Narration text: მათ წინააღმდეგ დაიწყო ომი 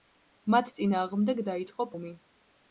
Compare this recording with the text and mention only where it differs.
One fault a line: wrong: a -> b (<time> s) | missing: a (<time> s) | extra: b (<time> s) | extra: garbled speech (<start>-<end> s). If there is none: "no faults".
no faults